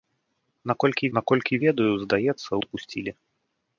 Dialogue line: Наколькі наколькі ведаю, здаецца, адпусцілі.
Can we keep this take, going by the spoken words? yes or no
yes